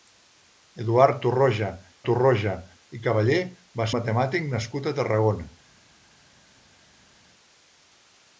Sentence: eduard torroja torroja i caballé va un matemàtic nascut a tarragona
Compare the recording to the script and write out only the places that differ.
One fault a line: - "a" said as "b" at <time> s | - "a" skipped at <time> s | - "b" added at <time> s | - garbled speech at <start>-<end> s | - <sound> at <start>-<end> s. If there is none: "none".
none